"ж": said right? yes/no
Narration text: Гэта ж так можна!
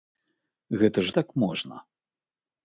yes